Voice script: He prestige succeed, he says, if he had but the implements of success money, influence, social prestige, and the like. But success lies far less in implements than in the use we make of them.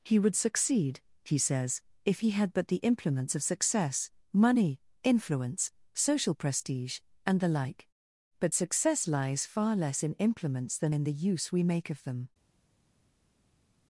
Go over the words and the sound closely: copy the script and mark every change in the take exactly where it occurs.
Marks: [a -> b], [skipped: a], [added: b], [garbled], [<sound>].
He [prestige -> would] succeed, he says, if he had but the implements of success money, influence, social prestige, and the like. But success lies far less in implements than in the use we make of them.